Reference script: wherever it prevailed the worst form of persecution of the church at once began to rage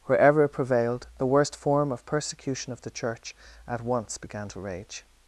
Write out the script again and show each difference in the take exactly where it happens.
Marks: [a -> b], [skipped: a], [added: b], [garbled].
wherever it prevailed the worst form of persecution of the church at once began to rage